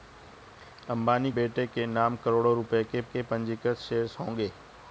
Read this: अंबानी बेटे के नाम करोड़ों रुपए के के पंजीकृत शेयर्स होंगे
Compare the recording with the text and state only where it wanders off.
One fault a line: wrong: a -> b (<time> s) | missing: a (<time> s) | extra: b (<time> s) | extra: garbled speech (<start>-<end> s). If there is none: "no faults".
no faults